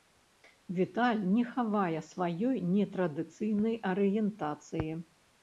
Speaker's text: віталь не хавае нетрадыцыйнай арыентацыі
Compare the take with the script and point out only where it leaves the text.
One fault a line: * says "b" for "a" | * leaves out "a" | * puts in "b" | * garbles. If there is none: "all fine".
* puts in "сваёй"